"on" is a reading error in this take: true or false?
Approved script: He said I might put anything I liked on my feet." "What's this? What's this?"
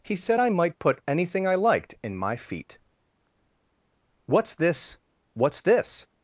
true